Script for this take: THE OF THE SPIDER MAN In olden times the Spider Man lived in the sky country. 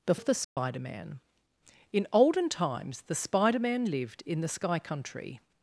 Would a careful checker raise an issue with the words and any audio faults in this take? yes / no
yes